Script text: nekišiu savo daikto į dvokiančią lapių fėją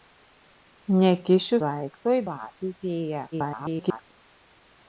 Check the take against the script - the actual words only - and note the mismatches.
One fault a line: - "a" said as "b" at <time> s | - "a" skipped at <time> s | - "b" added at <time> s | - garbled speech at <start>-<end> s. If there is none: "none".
- "savo" skipped at 1.6 s
- "dvokiančią" skipped at 2.2 s
- garbled speech at 3.3-4.1 s